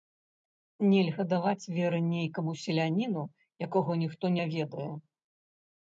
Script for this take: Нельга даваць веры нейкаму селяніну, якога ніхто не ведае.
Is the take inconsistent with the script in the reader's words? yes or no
no